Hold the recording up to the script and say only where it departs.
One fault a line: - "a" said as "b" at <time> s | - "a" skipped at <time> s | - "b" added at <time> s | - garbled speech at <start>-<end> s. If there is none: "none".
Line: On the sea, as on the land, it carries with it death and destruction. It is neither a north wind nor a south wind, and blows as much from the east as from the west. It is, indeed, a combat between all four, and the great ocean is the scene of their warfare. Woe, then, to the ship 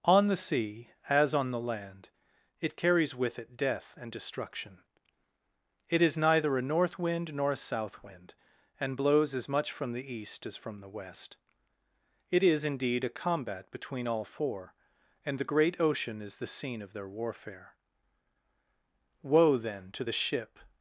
none